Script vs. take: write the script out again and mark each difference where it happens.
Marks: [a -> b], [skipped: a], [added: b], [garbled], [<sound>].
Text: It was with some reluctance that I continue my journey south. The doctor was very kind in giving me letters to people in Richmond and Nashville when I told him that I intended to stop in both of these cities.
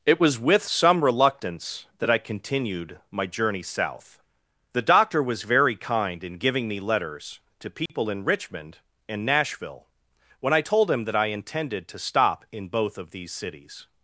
It was with some reluctance that I [continue -> continued] my journey south. The doctor was very kind in giving me letters to people [dropout] in Richmond and Nashville when I told him that I intended to stop in both of these cities.